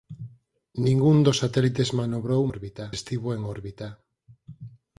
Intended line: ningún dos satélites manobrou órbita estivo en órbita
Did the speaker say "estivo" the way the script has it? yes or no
yes